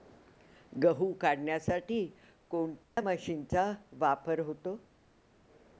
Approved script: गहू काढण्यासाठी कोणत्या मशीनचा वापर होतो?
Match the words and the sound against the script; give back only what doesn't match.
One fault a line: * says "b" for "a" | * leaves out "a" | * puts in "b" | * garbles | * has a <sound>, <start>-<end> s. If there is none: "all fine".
* has a dropout, 2.8-3.0 s